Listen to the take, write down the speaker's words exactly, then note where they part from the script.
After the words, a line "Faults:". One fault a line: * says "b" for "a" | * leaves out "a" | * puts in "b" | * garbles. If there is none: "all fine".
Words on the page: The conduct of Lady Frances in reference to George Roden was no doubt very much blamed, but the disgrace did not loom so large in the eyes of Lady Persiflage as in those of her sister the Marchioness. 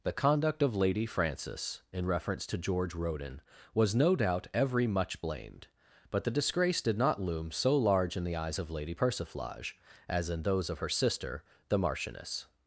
The conduct of Lady Frances in reference to George Roden was no doubt every much blamed, but the disgrace did not loom so large in the eyes of Lady Persiflage as in those of her sister the Marchioness.
Faults:
* says "every" for "very"